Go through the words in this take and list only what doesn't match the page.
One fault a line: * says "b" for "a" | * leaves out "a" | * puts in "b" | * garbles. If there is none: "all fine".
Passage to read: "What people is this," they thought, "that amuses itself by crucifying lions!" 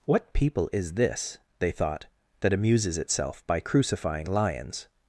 all fine